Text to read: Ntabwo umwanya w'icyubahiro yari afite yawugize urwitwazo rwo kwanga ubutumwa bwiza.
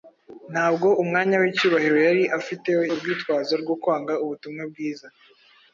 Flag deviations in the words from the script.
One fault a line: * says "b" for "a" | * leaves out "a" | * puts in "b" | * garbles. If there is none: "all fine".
* leaves out "yawugize"